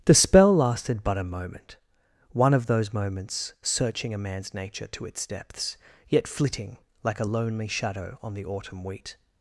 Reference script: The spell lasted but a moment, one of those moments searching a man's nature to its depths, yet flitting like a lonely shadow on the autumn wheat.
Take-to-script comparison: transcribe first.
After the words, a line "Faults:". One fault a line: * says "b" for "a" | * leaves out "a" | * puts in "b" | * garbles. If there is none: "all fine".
The spell lasted but a moment, one of those moments searching a man's nature to its depths, yet flitting like a lonely shadow on the autumn wheat.
Faults:
all fine